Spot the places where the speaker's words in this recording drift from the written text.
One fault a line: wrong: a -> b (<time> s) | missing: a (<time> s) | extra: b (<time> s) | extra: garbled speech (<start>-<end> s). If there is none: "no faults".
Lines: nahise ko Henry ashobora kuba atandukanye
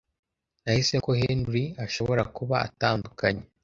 no faults